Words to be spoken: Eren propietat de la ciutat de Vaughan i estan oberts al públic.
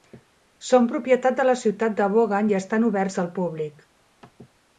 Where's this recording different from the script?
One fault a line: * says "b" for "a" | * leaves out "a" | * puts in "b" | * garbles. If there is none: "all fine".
* says "Són" for "Eren"